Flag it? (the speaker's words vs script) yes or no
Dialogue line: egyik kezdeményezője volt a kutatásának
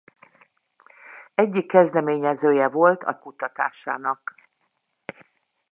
no